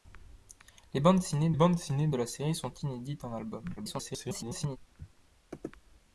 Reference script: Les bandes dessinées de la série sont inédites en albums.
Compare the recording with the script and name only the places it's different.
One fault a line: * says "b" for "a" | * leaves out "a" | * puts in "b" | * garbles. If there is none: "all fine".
* puts in "bandes dessinées"
* garbles